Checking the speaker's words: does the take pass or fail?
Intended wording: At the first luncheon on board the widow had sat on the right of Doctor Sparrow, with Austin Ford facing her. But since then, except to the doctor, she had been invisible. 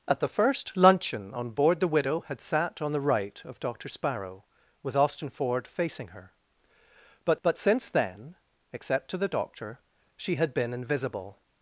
fail